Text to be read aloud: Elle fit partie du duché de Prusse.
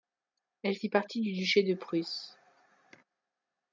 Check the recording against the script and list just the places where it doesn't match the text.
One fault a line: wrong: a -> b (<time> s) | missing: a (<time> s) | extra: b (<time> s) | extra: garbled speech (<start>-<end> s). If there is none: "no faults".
no faults